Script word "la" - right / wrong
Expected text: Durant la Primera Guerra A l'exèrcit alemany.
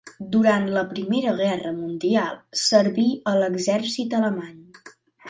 right